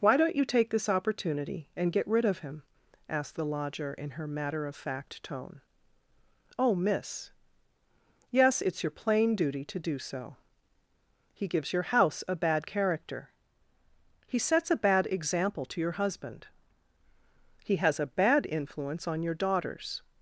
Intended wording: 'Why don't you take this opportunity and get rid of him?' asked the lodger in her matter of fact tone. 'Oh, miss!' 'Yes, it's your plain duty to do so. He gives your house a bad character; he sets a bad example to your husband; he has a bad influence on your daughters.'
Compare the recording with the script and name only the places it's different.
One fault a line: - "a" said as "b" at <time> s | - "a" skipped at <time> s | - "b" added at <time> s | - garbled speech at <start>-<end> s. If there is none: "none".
none